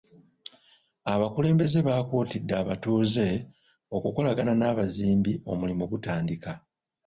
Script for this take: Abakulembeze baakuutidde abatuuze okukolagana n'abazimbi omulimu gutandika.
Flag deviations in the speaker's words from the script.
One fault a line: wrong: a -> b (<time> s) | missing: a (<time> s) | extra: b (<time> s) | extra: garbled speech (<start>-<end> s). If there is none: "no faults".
no faults